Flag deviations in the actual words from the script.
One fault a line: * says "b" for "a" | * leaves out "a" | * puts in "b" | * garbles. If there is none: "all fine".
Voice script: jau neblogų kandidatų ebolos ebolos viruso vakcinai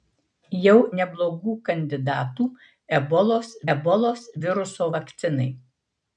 all fine